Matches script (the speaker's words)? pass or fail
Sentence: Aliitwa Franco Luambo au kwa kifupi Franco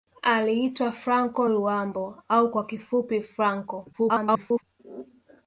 fail